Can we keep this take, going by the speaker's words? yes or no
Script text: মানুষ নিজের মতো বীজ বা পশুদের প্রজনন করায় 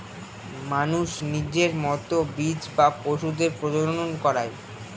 yes